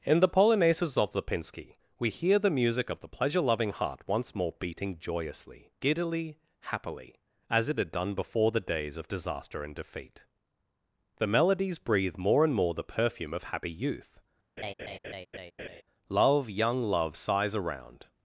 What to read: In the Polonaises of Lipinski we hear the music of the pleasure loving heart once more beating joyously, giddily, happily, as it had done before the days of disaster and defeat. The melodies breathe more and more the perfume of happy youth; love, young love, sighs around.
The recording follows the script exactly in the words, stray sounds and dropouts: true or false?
false